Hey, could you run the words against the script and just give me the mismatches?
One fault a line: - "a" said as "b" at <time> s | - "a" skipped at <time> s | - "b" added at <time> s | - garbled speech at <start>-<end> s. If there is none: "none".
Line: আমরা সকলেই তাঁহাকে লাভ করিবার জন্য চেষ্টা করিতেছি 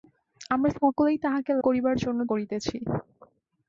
- "লাভ" skipped at 1.5 s
- "চেষ্টা" skipped at 2.2 s